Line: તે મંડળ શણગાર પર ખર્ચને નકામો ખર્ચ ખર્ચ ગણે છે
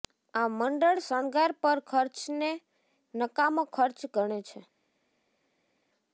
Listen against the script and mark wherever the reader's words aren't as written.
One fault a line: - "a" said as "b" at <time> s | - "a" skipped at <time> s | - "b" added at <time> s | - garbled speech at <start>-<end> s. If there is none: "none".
- "તે" said as "આ" at 0.3 s
- "ખર્ચ" skipped at 4.0 s